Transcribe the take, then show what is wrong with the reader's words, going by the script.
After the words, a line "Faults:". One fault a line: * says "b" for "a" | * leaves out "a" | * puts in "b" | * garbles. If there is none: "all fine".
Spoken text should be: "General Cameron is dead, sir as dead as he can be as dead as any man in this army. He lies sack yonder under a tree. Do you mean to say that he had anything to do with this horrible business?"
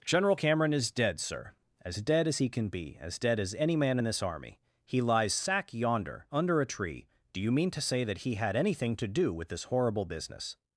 "General Cameron is dead, sir as dead as he can be as dead as any man in this army. He lies sack yonder under a tree. Do you mean to say that he had anything to do with this horrible business?"
Faults:
all fine